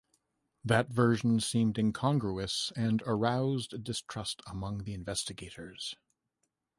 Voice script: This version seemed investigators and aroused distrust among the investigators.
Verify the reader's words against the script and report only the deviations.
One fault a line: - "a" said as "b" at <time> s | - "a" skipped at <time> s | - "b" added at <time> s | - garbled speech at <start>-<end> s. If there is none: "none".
- "This" said as "That" at 0.6 s
- "investigators" said as "incongruous" at 1.8 s